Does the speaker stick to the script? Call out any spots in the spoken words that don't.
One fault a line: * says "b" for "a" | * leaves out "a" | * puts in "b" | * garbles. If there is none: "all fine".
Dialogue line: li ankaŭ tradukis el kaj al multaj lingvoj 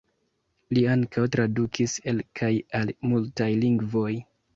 all fine